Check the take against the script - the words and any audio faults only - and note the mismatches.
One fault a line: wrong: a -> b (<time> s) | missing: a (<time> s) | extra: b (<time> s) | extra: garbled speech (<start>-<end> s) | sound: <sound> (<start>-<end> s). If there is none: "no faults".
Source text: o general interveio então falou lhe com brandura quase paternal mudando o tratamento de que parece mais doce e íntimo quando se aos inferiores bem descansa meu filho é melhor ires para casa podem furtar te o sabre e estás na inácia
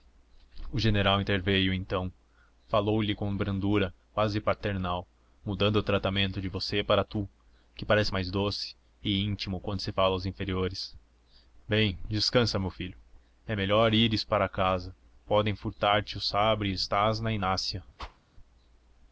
extra: você para tu (6.5 s)
extra: fala (9.9 s)
sound: whoosh (18.0-18.2 s)